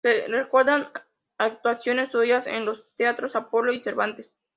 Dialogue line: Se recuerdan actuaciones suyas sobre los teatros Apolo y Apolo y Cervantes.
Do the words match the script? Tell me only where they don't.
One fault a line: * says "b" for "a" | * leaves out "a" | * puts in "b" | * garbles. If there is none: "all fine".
* says "en" for "sobre"
* leaves out "Apolo y"